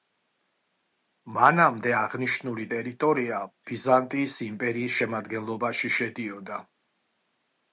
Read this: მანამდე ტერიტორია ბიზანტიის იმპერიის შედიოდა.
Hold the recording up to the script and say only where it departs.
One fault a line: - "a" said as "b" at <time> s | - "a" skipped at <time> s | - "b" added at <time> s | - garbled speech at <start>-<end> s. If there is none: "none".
- "აღნიშნული" added at 2.0 s
- "შემადგენლობაში" added at 5.0 s